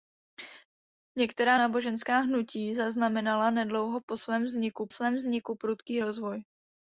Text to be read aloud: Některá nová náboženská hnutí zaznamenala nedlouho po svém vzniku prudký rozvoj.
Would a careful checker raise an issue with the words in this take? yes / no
yes